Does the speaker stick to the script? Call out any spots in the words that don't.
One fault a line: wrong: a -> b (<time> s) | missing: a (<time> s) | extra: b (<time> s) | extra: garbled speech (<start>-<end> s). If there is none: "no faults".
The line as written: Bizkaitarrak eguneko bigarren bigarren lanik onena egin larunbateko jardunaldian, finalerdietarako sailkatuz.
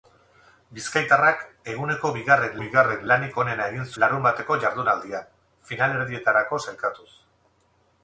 no faults